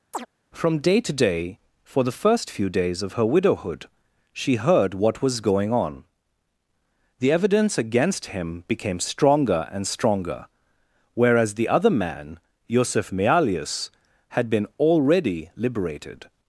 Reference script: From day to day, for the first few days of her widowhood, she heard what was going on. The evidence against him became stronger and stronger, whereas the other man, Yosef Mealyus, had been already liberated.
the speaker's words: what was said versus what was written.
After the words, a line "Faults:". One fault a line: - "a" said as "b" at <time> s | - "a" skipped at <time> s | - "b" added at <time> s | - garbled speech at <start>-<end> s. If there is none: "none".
From day to day, for the first few days of her widowhood, she heard what was going on. The evidence against him became stronger and stronger, whereas the other man, Yosef Mealyus, had been already liberated.
Faults:
none